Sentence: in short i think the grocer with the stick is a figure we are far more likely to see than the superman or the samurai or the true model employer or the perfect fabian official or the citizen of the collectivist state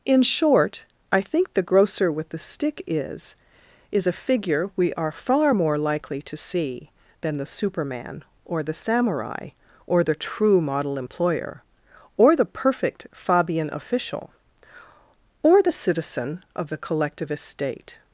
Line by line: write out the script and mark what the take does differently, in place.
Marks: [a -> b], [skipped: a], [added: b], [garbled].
in short i think the grocer with the stick is [added: is] a figure we are far more likely to see than the superman or the samurai or the true model employer or the perfect fabian official or the citizen of the collectivist state